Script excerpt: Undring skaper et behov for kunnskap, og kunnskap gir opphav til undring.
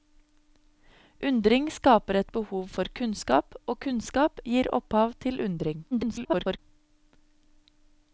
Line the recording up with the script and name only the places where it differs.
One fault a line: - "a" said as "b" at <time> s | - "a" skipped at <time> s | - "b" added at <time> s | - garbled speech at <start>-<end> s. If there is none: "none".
- garbled speech at 5.9-6.6 s